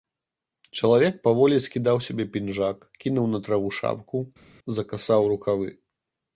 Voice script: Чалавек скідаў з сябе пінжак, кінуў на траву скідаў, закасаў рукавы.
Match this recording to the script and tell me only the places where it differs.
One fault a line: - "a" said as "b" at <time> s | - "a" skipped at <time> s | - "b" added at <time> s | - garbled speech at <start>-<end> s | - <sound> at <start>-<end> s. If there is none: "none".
- "паволі" added at 1.3 s
- "скідаў" said as "шапку" at 3.8 s